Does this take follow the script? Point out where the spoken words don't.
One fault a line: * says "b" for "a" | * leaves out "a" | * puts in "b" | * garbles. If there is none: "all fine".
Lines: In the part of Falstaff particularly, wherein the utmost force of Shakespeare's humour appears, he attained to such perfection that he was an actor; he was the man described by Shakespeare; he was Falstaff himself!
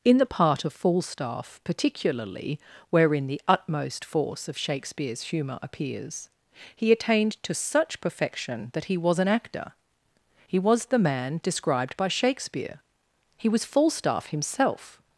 all fine